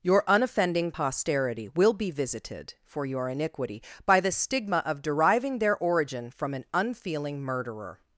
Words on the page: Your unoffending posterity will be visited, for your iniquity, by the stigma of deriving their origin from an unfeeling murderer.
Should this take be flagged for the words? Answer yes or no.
no